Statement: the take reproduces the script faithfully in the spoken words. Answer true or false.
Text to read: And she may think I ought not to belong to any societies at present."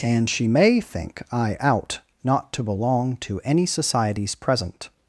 false